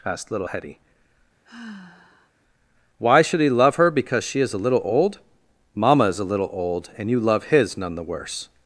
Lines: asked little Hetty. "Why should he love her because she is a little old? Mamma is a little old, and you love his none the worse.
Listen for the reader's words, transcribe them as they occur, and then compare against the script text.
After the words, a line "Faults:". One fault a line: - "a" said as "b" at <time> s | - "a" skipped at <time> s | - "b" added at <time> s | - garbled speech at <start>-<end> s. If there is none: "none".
asked little Hetty. "Why should he love her because she is a little old? Mamma is a little old, and you love his none the worse.
Faults:
none